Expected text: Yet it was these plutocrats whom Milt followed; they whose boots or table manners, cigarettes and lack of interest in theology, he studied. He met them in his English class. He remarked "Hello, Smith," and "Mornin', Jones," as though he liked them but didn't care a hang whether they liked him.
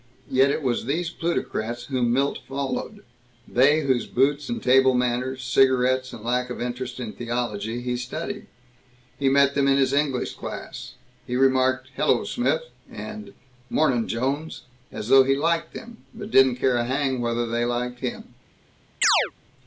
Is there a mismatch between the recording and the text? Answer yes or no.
yes